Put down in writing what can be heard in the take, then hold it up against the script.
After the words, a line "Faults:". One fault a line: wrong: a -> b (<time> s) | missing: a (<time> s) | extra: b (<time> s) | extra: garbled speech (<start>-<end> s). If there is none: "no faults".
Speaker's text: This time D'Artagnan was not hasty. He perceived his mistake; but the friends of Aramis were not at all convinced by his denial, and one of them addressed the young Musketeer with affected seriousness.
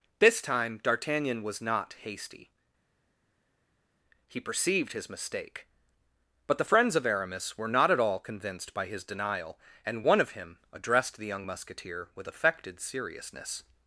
This time D'Artagnan was not hasty. He perceived his mistake; but the friends of Aramis were not at all convinced by his denial, and one of him addressed the young Musketeer with affected seriousness.
Faults:
wrong: them -> him (10.3 s)